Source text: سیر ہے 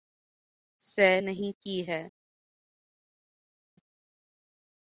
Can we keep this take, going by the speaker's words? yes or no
no